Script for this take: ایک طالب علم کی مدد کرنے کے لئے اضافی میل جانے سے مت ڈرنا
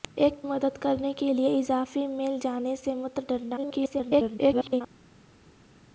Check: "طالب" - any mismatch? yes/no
yes